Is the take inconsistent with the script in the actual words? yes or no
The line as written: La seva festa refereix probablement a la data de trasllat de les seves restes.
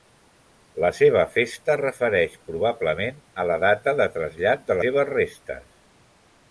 yes